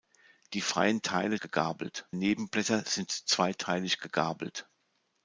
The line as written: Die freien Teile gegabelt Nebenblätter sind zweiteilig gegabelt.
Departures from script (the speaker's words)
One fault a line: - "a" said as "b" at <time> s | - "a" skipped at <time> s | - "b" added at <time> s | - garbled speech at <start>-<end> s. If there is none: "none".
none